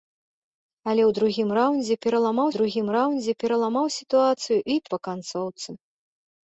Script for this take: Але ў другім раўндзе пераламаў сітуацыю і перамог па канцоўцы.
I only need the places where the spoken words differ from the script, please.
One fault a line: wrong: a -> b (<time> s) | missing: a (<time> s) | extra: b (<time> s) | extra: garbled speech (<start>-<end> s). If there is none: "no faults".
extra: другім раўндзе пераламаў (2.6 s)
missing: перамог (4.8 s)